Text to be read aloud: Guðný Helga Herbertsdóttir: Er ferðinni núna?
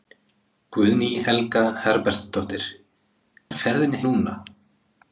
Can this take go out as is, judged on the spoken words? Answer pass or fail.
pass